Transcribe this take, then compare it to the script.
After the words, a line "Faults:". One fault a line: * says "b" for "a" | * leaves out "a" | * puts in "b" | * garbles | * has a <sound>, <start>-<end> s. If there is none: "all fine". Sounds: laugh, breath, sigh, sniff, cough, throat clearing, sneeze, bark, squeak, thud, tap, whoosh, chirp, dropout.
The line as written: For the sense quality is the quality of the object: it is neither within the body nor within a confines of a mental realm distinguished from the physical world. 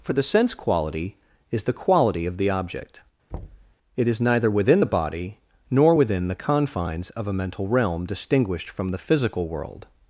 For the sense quality is the quality of the object: it is neither within the body nor within the confines of a mental realm distinguished from the physical world.
Faults:
* has a thud, 3.3-3.7 s
* says "the" for "a"